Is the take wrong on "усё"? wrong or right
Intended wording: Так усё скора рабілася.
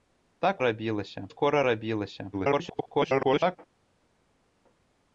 wrong